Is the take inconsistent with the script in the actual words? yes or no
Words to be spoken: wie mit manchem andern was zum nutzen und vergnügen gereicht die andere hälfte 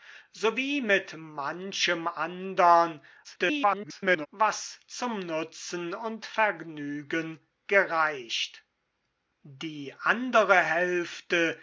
yes